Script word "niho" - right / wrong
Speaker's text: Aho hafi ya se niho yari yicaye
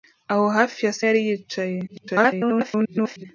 wrong